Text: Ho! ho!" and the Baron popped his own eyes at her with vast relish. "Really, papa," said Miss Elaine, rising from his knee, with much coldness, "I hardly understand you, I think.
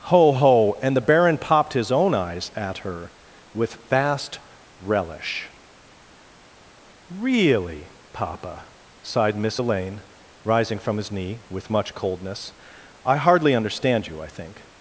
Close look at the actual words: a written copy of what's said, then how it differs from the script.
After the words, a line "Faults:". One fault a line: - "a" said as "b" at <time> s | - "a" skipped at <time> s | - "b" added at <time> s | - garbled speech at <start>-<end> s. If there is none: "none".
Ho! ho!" and the Baron popped his own eyes at her with vast relish. "Really, papa," sighed Miss Elaine, rising from his knee, with much coldness, "I hardly understand you, I think.
Faults:
- "said" said as "sighed" at 9.0 s